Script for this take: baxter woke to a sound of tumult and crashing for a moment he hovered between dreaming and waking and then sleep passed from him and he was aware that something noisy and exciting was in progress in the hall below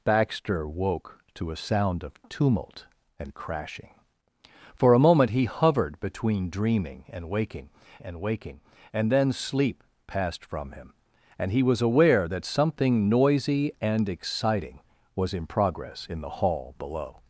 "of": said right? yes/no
yes